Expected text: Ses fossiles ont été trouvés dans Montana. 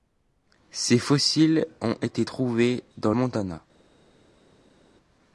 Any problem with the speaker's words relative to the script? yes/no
no